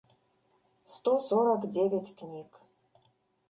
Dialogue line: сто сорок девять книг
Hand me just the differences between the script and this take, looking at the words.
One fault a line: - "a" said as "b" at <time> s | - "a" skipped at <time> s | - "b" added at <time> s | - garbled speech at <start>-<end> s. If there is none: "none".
none